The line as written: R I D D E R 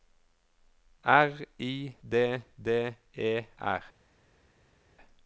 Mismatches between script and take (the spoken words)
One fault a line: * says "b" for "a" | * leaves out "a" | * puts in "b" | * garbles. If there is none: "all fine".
all fine